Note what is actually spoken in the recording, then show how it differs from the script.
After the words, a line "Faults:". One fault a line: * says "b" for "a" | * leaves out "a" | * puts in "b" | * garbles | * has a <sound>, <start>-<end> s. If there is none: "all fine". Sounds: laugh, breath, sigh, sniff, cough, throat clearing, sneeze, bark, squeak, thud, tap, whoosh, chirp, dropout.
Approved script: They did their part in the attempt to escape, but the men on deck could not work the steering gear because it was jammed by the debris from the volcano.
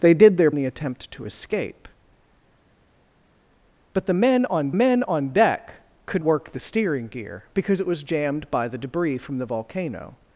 They did their the attempt to escape, but the men on men on deck could work the steering gear because it was jammed by the debris from the volcano.
Faults:
* leaves out "part in"
* puts in "men on"
* leaves out "not"